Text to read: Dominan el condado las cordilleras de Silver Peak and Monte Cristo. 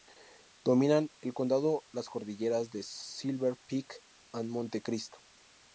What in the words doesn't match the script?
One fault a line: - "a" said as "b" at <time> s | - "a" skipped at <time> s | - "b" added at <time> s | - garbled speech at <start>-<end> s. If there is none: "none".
none